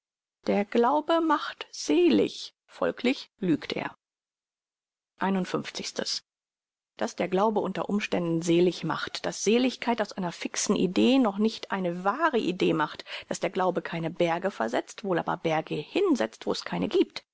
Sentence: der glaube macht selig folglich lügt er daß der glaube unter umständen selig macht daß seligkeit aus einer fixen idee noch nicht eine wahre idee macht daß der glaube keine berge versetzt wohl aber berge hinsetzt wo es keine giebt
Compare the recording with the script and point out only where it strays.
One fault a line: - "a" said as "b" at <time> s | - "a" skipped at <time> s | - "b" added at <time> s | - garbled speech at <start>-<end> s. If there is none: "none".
none